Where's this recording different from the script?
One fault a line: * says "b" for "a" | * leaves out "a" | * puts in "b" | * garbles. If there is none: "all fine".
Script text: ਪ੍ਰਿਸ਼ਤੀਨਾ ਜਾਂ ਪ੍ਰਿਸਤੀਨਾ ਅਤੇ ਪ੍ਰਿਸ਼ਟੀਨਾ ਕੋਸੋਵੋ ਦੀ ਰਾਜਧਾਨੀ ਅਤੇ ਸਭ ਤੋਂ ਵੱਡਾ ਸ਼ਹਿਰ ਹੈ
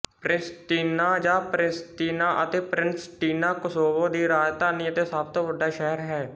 all fine